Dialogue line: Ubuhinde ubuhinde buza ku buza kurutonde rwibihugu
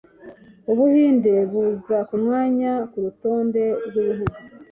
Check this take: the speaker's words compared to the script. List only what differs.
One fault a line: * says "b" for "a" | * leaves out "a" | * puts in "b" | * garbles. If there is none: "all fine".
* leaves out "ubuhinde"
* says "mwanya" for "buza"